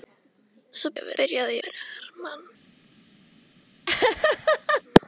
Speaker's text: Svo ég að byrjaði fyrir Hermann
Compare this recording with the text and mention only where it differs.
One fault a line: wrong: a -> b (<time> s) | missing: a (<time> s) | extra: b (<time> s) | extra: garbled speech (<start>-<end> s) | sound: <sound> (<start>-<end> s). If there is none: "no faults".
sound: laugh (3.9-4.8 s)